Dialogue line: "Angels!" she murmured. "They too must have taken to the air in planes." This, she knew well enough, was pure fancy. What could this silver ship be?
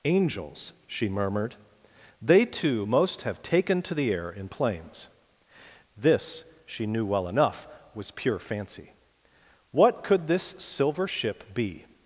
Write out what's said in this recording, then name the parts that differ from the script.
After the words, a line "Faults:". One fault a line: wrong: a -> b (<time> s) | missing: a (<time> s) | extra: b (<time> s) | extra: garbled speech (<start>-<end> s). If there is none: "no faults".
"Angels!" she murmured. "They too most have taken to the air in planes." This, she knew well enough, was pure fancy. What could this silver ship be?
Faults:
wrong: must -> most (2.8 s)